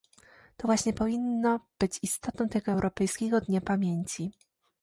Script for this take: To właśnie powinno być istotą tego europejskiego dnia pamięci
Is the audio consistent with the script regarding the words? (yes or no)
yes